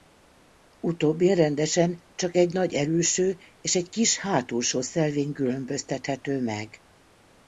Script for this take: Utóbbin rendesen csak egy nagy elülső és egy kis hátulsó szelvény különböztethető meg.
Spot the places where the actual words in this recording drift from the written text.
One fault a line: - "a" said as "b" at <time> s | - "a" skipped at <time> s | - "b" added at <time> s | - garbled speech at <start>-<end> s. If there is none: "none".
none